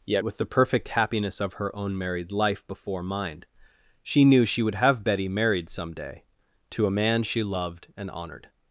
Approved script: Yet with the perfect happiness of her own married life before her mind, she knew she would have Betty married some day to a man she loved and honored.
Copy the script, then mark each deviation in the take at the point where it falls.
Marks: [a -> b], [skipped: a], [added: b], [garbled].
Yet with the perfect happiness of her own married life before [skipped: her] mind, she knew she would have Betty married some day to a man she loved and honored.